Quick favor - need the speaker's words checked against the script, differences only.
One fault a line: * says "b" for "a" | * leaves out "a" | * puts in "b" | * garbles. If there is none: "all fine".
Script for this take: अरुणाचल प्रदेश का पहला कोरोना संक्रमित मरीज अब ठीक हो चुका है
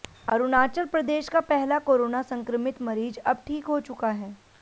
all fine